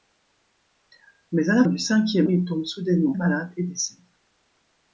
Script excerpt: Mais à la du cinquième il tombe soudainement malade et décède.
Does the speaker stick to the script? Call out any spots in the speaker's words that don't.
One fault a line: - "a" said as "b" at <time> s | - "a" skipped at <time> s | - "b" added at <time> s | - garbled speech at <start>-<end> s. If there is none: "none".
none